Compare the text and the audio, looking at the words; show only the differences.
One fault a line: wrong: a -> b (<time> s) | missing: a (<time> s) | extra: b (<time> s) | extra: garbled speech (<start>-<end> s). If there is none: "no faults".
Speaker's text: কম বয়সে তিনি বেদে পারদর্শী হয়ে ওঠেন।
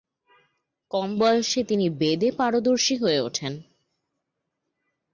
no faults